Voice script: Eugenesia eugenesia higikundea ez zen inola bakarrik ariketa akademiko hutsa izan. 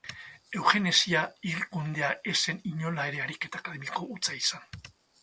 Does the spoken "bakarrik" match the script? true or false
false